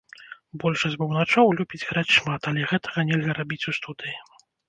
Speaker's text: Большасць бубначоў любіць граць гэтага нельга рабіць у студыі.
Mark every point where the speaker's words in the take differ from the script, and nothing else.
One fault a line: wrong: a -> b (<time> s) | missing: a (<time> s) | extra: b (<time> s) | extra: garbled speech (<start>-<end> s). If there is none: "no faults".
extra: шмат але (2.2 s)